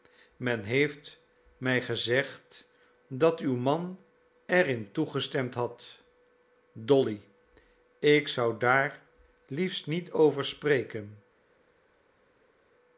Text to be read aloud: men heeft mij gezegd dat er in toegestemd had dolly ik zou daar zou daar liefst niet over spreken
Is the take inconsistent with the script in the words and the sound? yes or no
yes